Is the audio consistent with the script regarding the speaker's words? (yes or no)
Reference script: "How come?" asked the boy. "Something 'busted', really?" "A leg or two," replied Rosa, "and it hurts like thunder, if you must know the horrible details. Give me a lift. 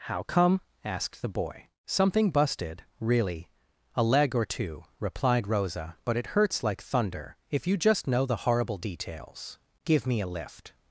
no